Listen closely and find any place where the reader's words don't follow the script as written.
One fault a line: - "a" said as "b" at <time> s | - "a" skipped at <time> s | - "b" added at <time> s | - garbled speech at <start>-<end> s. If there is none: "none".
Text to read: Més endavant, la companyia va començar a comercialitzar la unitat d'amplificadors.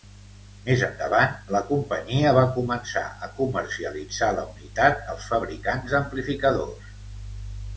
- "als fabricants" added at 5.1 s